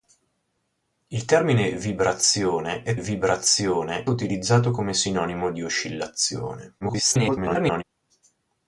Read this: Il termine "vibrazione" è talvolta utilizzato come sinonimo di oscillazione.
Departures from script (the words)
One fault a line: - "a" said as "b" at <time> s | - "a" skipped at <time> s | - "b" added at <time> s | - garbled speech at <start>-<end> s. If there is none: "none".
- "talvolta" said as "vibrazione" at 3.0 s
- garbled speech at 6.8-7.8 s